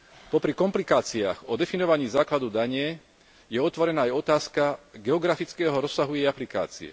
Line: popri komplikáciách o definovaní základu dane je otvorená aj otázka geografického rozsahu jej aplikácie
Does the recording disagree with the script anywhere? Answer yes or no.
no